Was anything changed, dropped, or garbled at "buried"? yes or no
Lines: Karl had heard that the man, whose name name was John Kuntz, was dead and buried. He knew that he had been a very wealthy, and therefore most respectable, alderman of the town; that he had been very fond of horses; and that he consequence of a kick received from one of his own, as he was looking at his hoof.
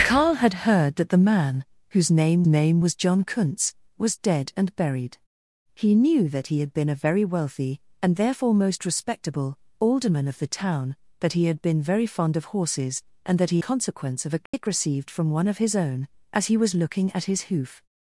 no